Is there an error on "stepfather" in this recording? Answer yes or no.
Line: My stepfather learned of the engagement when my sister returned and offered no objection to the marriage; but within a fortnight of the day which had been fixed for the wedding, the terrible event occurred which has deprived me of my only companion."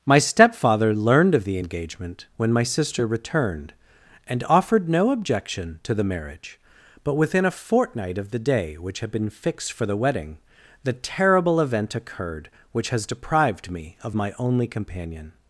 no